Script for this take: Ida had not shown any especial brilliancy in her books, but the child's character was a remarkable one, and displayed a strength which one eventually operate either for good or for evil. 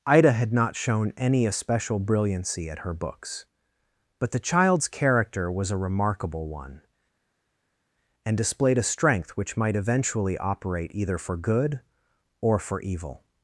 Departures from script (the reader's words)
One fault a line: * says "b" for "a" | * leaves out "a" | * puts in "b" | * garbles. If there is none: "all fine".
* says "at" for "in"
* says "might" for "one"